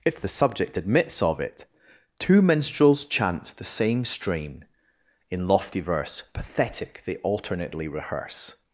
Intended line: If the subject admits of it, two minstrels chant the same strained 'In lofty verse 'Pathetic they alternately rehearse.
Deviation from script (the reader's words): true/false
true